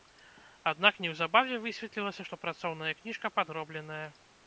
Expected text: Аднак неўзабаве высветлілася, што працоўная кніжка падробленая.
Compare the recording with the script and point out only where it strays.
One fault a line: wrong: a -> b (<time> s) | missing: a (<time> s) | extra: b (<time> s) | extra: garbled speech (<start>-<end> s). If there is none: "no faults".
no faults